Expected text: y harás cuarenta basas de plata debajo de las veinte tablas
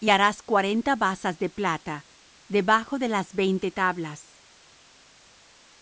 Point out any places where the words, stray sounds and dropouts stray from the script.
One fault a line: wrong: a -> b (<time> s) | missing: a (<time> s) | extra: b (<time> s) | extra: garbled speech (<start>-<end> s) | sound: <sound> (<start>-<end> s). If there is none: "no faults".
no faults